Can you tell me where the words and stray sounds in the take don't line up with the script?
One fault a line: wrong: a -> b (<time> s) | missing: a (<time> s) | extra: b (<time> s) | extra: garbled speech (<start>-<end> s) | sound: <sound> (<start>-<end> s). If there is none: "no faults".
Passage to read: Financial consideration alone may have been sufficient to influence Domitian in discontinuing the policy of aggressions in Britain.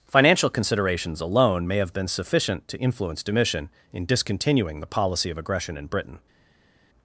wrong: consideration -> considerations (0.5 s)
wrong: aggressions -> aggression (5.4 s)